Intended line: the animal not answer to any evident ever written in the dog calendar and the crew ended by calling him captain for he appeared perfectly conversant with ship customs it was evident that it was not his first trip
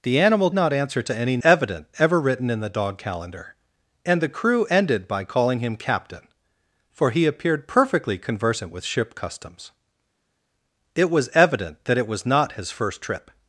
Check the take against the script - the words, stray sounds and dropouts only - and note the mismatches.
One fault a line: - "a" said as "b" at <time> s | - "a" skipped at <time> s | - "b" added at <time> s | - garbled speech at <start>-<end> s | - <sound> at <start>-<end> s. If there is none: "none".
none